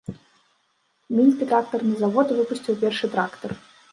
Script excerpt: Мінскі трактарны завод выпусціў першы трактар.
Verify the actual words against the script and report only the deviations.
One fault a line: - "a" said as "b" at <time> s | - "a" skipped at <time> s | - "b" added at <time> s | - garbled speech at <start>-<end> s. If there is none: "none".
none